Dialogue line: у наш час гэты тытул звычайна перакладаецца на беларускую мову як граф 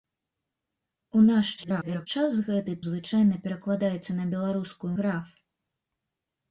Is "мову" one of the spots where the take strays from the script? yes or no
yes